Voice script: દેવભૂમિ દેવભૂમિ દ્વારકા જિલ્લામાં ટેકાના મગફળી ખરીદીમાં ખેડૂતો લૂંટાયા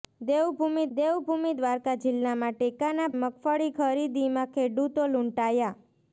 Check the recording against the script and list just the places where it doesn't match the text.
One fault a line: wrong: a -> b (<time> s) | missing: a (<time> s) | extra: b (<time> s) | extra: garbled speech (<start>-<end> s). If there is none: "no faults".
no faults